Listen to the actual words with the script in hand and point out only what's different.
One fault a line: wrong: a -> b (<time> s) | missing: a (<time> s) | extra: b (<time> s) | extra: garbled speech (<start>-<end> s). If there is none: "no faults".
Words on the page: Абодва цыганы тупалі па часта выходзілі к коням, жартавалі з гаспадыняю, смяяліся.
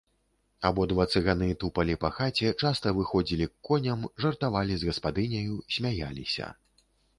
extra: хаце (2.1 s)